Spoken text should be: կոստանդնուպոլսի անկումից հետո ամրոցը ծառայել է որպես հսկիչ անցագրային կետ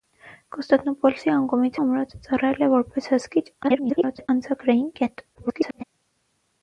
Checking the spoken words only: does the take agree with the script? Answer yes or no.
no